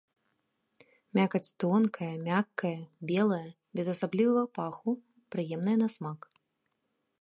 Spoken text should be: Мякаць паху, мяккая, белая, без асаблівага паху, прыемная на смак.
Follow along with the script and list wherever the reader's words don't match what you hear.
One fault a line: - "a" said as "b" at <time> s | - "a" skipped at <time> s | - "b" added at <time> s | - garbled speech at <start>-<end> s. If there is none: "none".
- "паху" said as "тонкая" at 1.6 s